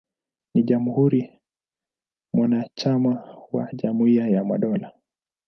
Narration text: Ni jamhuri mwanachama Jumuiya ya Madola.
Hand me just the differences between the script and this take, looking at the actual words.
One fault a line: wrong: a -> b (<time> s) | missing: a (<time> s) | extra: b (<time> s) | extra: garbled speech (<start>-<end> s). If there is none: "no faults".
extra: wa (3.5 s)